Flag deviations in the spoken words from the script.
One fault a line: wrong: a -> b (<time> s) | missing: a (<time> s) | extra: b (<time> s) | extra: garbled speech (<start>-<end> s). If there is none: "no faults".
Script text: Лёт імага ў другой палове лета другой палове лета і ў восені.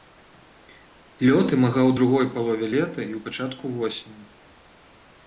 missing: другой палове лета (3.0 s)
extra: пачатку (3.3 s)